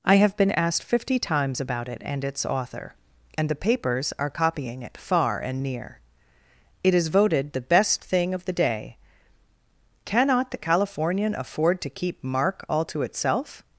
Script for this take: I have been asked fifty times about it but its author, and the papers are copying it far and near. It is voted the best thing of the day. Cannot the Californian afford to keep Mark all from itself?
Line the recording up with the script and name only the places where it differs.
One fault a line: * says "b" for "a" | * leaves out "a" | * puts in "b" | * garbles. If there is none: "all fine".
* says "and" for "but"
* says "to" for "from"